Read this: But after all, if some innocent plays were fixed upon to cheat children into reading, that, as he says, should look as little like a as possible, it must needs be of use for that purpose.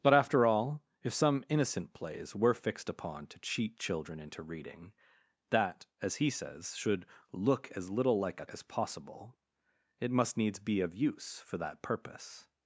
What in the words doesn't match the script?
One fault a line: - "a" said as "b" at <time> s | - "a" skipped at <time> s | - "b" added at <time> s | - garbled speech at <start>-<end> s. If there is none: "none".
none